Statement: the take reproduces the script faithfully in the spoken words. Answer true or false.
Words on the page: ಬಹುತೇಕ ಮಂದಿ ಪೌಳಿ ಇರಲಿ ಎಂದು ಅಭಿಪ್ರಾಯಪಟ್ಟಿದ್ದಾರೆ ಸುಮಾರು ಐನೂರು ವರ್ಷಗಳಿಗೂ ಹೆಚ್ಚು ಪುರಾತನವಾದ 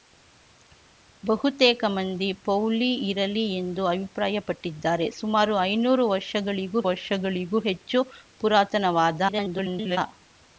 false